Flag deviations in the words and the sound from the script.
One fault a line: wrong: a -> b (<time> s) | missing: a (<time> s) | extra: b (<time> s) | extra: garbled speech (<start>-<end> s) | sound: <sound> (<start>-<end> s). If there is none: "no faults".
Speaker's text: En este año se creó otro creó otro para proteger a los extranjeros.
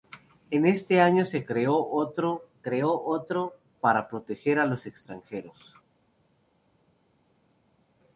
no faults